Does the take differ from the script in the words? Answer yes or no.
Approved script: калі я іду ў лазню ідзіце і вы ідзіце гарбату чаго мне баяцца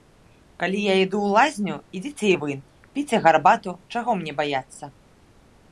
yes